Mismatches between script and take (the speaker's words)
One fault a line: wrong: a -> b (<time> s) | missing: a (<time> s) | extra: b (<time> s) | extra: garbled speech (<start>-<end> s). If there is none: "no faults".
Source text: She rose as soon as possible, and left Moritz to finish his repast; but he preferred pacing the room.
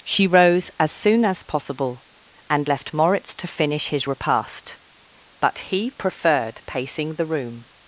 no faults